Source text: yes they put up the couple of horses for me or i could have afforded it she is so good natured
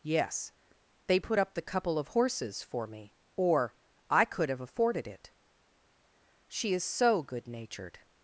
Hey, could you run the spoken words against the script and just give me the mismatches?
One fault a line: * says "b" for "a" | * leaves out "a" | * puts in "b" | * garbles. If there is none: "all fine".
all fine